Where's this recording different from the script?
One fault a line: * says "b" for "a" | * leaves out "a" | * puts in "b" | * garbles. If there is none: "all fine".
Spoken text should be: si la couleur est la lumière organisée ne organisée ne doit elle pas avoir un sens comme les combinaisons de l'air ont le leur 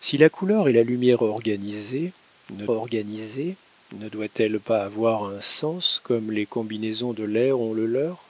all fine